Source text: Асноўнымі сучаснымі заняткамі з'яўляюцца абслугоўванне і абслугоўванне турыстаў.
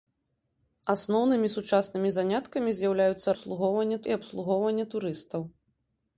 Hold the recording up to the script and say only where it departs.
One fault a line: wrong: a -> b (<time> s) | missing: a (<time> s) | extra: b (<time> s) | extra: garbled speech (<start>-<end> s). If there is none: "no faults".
no faults